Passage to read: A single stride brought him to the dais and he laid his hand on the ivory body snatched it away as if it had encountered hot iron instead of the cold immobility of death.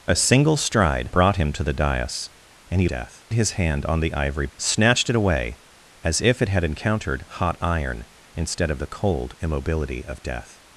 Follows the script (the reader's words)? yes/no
no